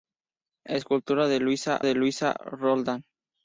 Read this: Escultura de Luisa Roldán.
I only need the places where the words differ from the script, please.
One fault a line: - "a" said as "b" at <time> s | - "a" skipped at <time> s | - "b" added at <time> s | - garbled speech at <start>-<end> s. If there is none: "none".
- "de Luisa" added at 1.8 s